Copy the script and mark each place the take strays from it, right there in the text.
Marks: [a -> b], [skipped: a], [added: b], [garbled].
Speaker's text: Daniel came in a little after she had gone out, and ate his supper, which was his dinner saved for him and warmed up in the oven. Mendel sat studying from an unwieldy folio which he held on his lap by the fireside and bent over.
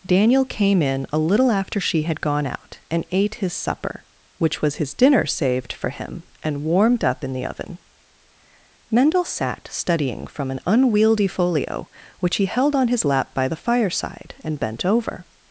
Daniel came in a little after she had gone out, and ate his supper, which was his dinner saved for him and warmed up in the oven. Mendel sat studying from an unwieldy folio which he held on his lap by the fireside and bent over.